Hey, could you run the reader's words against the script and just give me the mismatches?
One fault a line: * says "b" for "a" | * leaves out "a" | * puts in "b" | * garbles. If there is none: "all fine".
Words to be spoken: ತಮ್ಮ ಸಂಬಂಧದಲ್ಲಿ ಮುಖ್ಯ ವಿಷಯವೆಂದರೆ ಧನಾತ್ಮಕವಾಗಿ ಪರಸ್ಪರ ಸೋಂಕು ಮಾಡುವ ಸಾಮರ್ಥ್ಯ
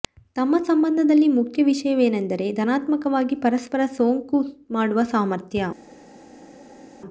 all fine